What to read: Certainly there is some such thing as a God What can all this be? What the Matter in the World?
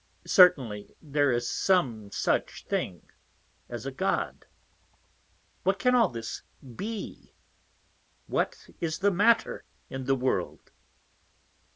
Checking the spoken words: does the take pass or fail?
fail